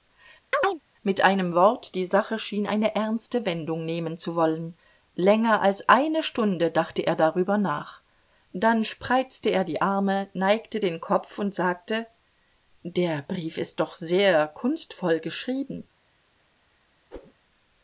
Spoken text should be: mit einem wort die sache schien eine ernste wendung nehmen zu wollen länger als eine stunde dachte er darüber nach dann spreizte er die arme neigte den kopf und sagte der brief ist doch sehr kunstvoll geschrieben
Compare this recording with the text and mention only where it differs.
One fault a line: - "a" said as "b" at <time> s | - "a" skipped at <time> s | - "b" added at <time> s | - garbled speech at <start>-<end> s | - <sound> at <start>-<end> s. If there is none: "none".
- chirp at 0.5-0.8 s
- whoosh at 17.1-17.3 s